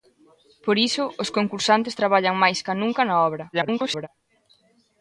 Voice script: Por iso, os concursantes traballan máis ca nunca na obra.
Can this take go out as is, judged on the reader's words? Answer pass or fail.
fail